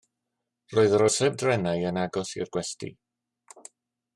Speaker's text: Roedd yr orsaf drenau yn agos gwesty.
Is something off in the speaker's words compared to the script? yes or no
yes